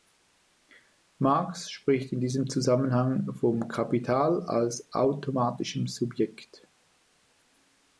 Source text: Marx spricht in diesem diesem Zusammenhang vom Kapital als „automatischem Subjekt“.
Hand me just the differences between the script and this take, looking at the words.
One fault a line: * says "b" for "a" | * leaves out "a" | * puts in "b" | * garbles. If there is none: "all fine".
* leaves out "diesem"